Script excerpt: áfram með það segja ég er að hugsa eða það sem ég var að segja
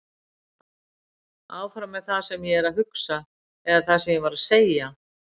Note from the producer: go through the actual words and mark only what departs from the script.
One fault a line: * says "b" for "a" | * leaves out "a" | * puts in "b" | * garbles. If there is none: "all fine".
* says "sem" for "segja"